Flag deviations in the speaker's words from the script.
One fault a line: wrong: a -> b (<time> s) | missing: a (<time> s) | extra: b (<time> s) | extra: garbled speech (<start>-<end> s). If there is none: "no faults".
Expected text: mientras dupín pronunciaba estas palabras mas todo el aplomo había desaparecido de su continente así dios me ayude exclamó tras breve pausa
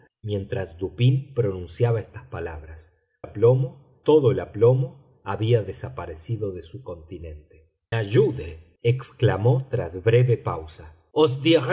wrong: mas -> aplomo (3.2 s)
missing: así dios me (7.7 s)